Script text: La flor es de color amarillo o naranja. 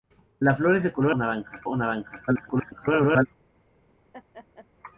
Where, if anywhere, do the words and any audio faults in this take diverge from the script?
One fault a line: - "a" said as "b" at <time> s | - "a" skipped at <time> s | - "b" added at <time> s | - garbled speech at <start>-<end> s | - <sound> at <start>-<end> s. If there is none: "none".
- "amarillo" said as "naranja" at 1.1 s
- garbled speech at 2.3-3.3 s
- laugh at 4.1-4.7 s